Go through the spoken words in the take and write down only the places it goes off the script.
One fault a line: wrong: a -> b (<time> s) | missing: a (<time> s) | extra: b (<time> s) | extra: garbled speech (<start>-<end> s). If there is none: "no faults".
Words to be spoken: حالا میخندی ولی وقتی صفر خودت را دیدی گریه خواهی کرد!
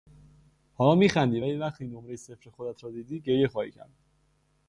extra: نمرهی (1.9 s)